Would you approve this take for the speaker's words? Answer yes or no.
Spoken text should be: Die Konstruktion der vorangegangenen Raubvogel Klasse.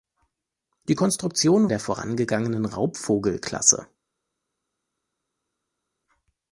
yes